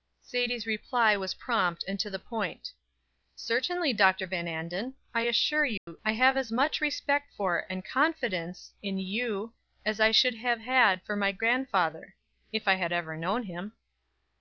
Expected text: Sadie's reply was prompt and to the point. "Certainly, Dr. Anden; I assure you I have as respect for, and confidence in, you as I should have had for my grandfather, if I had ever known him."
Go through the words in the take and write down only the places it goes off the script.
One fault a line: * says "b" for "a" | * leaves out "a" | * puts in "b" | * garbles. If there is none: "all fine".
* puts in "Van"
* puts in "much"